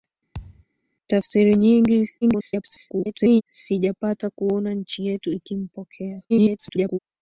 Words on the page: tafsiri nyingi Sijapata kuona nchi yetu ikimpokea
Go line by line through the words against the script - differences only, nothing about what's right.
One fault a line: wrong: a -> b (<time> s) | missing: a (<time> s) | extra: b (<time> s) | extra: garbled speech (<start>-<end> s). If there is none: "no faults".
extra: garbled speech (2.2-3.4 s)
extra: garbled speech (6.3-7.0 s)